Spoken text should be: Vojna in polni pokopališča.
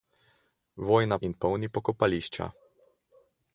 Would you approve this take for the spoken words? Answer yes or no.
yes